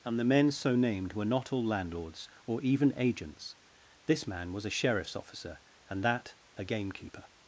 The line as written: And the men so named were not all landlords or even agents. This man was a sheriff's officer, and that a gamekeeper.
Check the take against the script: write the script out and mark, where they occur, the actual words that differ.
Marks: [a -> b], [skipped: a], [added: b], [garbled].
And the men so named were not all landlords or even agents. This man was a sheriff's officer, and that a gamekeeper.